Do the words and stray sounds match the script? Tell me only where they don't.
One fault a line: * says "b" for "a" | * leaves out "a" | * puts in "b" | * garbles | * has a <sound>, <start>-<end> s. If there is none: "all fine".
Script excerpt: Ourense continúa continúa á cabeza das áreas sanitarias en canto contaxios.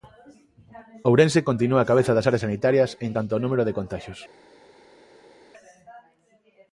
* leaves out "continúa"
* puts in "ao número de"